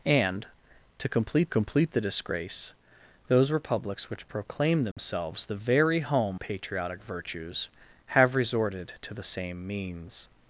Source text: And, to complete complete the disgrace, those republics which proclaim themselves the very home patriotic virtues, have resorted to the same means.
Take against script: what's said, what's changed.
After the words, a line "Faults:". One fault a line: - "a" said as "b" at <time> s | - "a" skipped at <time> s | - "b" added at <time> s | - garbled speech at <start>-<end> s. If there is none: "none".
And, to complete complete the disgrace, those republics which proclaim themselves the very home patriotic virtues, have resorted to the same means.
Faults:
none